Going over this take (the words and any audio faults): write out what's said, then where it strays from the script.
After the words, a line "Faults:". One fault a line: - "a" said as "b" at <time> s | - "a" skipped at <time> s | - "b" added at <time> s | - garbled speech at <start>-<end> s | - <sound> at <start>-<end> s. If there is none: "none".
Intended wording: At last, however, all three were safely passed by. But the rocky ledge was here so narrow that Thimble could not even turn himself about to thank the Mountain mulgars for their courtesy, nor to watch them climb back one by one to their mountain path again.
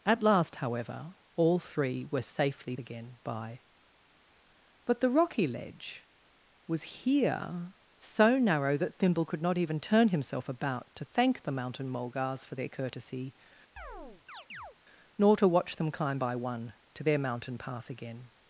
At last, however, all three were safely again by. But the rocky ledge was here so narrow that Thimble could not even turn himself about to thank the Mountain mulgars for their courtesy, nor to watch them climb by one to their mountain path again.
Faults:
- "passed" said as "again" at 2.8 s
- chirp at 13.8-14.8 s
- "back one" skipped at 16.2 s